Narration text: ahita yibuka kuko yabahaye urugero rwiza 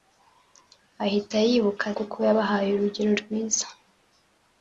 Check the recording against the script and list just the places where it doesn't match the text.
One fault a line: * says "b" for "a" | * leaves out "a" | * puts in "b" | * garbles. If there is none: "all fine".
all fine